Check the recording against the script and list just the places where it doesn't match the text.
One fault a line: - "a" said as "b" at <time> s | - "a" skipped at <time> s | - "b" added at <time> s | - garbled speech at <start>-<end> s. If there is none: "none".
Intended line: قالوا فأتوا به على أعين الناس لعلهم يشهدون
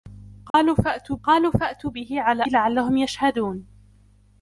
- "قالوا فأتوا" added at 1.2 s
- "أعين الناس" skipped at 2.4 s